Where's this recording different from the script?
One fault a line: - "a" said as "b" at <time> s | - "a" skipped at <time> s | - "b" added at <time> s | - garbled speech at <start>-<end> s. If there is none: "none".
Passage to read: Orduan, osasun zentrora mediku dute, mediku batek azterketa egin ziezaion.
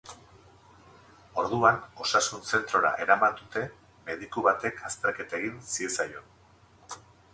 - "mediku" said as "eraman" at 3.0 s